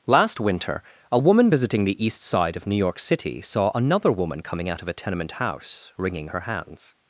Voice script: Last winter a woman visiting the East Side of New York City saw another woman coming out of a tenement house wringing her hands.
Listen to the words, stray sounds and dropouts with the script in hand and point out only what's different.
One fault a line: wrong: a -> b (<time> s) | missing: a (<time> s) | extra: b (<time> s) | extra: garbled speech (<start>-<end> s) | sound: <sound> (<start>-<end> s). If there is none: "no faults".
no faults